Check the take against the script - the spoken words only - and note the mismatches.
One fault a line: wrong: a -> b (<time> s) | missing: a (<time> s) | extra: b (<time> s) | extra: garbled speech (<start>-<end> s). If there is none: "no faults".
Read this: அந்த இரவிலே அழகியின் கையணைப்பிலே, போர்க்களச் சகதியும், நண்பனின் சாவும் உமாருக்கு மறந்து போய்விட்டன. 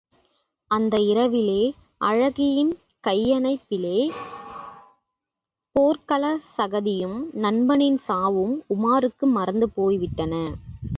no faults